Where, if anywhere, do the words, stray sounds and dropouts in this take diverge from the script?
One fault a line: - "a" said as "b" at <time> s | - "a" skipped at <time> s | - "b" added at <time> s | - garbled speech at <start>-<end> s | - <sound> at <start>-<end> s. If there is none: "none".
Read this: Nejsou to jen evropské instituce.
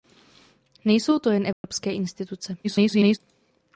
- dropout at 1.5-1.6 s
- garbled speech at 2.6-3.2 s